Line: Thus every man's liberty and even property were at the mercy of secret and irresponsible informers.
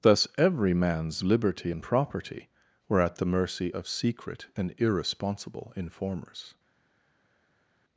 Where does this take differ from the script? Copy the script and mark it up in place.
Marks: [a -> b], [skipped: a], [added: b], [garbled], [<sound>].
Thus every man's liberty and [skipped: even] property were at the mercy of secret and irresponsible informers.